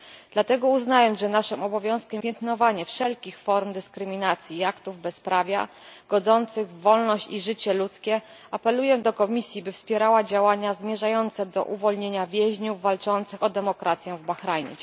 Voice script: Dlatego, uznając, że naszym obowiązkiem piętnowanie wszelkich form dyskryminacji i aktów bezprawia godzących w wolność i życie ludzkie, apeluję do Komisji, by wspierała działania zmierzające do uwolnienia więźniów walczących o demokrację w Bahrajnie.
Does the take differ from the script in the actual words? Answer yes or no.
no